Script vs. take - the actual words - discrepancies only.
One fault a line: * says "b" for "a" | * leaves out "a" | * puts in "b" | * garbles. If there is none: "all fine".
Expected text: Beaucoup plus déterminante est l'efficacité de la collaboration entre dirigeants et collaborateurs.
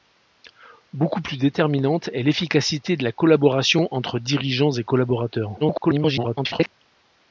* garbles